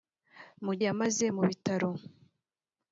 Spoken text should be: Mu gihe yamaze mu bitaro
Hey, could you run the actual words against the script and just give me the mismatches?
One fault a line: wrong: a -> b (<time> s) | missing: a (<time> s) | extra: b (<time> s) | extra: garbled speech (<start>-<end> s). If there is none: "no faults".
missing: gihe (0.7 s)